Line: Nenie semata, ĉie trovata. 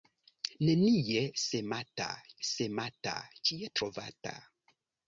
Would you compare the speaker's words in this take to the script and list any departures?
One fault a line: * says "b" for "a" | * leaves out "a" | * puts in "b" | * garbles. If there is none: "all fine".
* puts in "semata"